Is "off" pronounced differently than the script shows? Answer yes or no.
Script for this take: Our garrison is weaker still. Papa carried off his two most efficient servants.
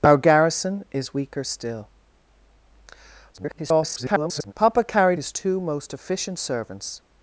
yes